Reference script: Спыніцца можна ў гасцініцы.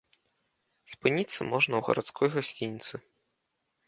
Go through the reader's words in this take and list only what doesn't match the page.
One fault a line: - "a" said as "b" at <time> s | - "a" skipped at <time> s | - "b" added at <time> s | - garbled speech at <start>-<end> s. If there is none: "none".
- "гарадской" added at 1.9 s